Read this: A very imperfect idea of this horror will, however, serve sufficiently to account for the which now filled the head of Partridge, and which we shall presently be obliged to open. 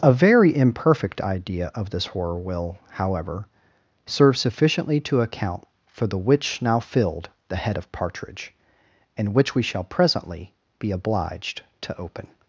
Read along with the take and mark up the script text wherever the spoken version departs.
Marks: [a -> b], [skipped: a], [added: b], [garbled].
A very imperfect idea of this horror will, however, serve sufficiently to account for the which now filled the head of Partridge, and which we shall presently be obliged to open.